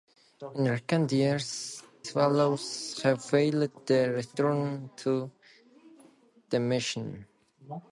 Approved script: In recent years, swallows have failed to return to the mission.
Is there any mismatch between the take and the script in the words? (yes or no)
no